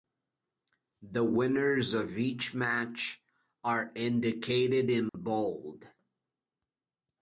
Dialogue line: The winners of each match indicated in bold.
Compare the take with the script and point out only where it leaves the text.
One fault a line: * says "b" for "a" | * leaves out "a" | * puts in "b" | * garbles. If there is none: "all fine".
* puts in "are"